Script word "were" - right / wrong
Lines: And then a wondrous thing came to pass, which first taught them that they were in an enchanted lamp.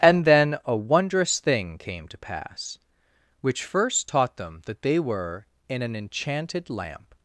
right